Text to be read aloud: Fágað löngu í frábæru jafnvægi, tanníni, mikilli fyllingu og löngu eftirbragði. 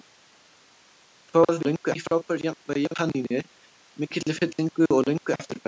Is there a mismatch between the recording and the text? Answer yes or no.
no